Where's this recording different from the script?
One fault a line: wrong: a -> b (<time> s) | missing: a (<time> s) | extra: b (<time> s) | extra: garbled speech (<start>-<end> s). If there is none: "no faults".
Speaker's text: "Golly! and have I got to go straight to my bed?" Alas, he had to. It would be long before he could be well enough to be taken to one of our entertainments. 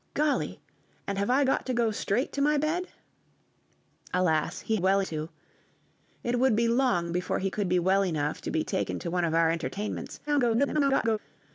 wrong: had -> well (4.7 s)
extra: garbled speech (10.3-11.2 s)